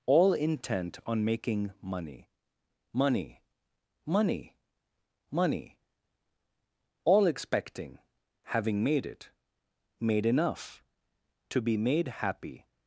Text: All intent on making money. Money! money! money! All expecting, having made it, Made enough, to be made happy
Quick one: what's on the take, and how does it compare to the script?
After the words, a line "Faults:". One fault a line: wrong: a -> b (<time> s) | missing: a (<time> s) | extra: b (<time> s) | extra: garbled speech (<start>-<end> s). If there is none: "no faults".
All intent on making money. Money! money! money! All expecting, having made it, Made enough, to be made happy
Faults:
no faults